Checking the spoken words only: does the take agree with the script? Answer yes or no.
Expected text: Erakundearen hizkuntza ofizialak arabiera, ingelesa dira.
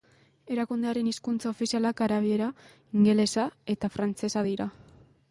no